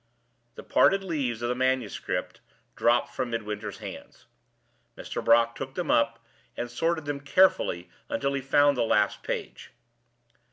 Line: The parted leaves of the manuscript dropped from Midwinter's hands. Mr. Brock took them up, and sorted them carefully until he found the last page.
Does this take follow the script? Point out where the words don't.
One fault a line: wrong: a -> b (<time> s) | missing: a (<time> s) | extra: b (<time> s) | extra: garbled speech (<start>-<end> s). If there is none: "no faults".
no faults